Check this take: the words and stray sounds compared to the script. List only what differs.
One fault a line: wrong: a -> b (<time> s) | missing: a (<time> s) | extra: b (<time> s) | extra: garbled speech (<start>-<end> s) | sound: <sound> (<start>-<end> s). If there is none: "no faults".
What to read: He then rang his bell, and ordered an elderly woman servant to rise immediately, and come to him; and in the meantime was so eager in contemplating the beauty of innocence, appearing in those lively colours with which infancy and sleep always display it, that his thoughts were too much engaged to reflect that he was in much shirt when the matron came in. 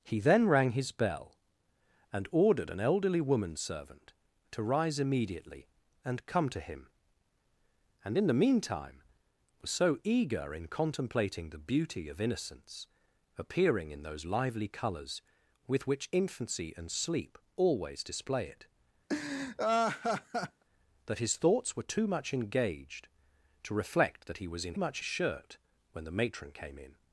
sound: laugh (19.1-20.6 s)